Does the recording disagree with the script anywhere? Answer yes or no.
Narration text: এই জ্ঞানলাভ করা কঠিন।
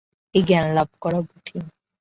no